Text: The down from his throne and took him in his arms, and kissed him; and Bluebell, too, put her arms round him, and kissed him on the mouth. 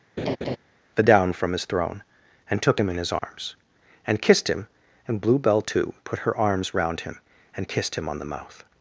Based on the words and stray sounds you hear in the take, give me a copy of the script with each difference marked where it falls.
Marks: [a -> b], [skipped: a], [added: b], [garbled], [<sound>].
[laugh] The down from his throne and took him in his arms, [dropout] and kissed him; and Bluebell, too, put her arms round him, and kissed him on the mouth.